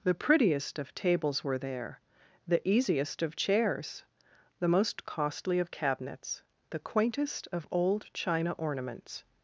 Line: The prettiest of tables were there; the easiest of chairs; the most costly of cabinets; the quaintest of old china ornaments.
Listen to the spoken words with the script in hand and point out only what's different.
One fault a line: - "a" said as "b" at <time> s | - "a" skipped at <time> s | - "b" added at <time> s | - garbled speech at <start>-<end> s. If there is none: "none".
none